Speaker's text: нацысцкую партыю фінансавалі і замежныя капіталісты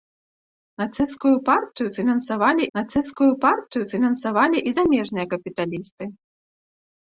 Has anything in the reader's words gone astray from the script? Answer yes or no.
yes